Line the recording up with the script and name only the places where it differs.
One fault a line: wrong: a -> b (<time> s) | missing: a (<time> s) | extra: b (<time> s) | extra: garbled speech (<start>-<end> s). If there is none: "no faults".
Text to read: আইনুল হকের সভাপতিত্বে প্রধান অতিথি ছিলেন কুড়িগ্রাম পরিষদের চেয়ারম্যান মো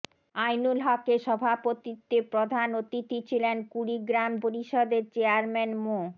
no faults